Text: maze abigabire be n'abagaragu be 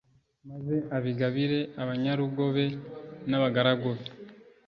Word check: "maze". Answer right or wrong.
right